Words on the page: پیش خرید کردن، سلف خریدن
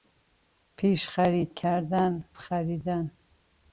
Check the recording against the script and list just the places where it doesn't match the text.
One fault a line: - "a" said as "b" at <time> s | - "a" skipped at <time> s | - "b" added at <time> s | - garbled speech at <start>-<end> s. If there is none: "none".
- "سلف" skipped at 2.2 s